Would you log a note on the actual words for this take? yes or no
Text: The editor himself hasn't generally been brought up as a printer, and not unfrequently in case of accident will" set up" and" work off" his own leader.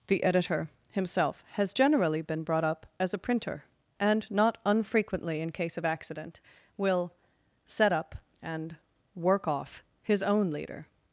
yes